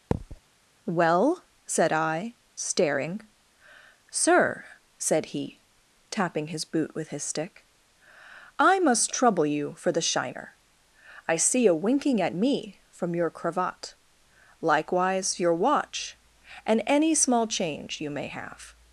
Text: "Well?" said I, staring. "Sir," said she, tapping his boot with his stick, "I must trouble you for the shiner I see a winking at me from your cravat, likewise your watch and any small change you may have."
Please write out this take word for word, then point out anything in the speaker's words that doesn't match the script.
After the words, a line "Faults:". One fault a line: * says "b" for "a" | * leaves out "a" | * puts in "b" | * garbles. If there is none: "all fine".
"Well?" said I, staring. "Sir," said he, tapping his boot with his stick, "I must trouble you for the shiner I see a winking at me from your cravat, likewise your watch and any small change you may have."
Faults:
* says "he" for "she"